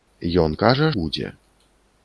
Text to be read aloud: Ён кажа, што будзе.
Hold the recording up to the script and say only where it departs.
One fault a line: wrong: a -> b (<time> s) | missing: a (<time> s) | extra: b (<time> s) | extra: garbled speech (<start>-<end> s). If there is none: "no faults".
missing: што (0.9 s)